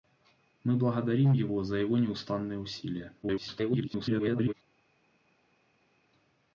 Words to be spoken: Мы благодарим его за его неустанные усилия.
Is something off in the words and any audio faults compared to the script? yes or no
yes